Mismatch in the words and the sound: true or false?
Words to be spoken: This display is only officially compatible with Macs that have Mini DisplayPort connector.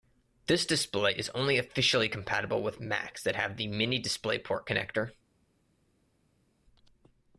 true